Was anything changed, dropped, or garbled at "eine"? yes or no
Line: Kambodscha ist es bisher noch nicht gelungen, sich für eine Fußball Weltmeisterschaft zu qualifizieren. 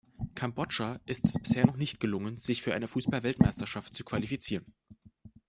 no